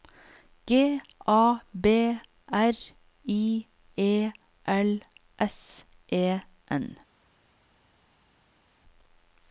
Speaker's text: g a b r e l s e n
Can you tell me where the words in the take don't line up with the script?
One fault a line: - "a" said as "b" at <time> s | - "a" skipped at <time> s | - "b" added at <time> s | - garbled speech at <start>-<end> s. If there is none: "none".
- "i" added at 3.3 s